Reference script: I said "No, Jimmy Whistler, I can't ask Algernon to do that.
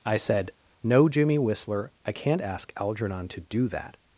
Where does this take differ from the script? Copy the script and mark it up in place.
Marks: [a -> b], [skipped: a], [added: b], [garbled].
I said "No, Jimmy Whistler, I can't ask Algernon to do that.